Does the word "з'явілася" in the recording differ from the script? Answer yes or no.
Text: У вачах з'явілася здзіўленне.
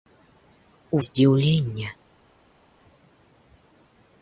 yes